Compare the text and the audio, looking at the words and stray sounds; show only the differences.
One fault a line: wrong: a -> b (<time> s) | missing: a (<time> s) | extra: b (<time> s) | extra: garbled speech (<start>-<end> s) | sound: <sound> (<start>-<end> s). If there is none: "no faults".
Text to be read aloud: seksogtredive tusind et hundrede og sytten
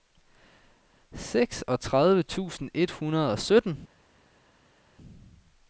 no faults